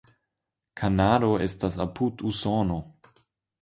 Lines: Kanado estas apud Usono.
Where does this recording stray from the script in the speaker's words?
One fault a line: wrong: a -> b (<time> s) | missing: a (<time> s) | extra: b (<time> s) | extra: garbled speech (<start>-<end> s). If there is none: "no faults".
no faults